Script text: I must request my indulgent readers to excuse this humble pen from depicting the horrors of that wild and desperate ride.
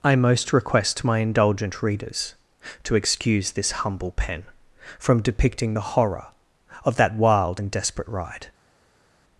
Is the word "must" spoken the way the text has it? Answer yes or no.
no